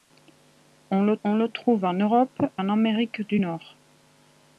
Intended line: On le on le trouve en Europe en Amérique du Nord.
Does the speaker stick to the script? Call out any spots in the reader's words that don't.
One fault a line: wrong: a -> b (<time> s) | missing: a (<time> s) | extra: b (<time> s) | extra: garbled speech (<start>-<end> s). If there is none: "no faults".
no faults